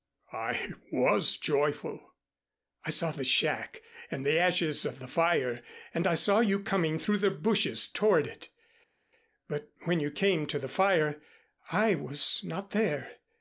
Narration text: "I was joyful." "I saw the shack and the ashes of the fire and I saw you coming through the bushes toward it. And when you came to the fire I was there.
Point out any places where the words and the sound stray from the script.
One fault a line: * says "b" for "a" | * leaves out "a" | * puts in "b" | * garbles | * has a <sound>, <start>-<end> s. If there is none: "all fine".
* says "But" for "And"
* puts in "not"